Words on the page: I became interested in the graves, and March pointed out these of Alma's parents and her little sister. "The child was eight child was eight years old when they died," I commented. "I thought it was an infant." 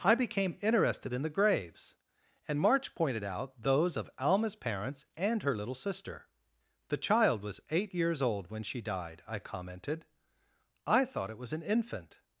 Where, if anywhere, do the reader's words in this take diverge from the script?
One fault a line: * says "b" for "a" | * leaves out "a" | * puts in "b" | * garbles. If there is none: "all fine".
* says "those" for "these"
* leaves out "child was eight"
* says "she" for "they"